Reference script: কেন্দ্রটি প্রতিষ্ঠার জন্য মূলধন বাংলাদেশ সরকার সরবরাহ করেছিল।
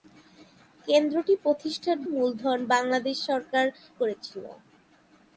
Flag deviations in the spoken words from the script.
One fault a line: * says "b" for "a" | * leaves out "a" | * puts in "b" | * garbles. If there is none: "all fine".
* leaves out "জন্য"
* leaves out "সরবরাহ"